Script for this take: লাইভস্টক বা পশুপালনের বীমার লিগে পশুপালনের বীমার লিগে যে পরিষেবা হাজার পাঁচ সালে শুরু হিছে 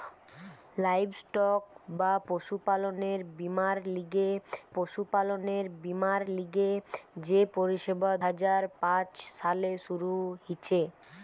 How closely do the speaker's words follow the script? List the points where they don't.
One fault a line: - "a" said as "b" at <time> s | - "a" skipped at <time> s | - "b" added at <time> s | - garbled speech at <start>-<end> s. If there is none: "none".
none